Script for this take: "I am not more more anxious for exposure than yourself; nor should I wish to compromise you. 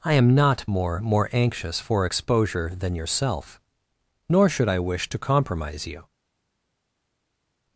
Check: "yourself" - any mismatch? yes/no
no